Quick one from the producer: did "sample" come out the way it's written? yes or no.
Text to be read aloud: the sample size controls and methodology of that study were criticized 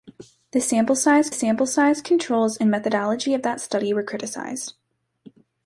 yes